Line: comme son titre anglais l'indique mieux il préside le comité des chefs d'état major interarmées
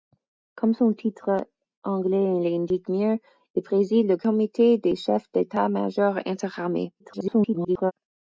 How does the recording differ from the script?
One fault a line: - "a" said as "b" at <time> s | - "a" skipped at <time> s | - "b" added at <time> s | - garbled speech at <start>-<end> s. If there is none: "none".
- garbled speech at 7.0-7.9 s